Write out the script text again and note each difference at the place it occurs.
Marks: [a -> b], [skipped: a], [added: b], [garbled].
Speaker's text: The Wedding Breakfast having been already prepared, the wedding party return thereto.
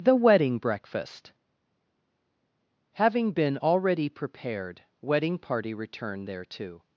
The Wedding Breakfast having been already prepared, [skipped: the] wedding party return thereto.